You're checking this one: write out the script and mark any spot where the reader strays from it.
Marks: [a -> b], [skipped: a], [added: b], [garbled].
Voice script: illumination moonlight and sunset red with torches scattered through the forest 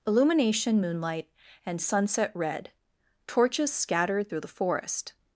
illumination moonlight and sunset red [skipped: with] torches scattered through the forest